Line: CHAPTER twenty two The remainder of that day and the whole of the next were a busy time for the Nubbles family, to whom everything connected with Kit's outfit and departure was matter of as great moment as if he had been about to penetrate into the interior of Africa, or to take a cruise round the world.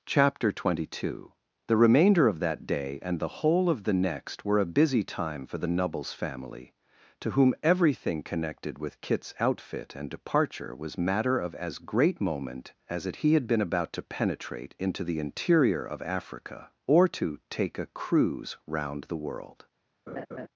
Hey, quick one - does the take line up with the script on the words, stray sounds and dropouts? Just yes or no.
no